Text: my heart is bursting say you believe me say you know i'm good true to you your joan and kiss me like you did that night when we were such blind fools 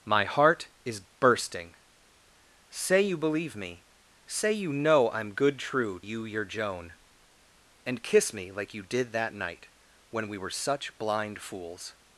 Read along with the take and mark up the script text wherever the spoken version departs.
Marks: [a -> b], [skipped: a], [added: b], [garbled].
my heart is bursting say you believe me say you know i'm good true [skipped: to] you your joan and kiss me like you did that night when we were such blind fools